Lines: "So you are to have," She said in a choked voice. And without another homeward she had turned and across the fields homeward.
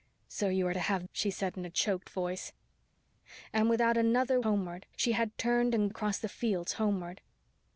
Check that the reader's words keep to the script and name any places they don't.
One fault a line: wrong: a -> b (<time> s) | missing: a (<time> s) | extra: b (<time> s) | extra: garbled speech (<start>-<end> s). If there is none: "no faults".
no faults